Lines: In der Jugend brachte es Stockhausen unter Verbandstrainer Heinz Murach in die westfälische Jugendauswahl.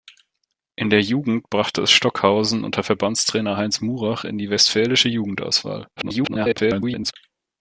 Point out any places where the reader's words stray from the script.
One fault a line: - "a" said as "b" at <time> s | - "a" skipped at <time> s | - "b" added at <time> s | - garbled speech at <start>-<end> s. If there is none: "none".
- garbled speech at 6.0-7.1 s